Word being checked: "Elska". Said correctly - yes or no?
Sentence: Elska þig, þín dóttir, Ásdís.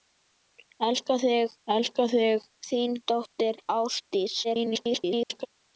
yes